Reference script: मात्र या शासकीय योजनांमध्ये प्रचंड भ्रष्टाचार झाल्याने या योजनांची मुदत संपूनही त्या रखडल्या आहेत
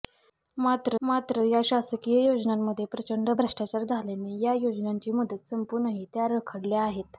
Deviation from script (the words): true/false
true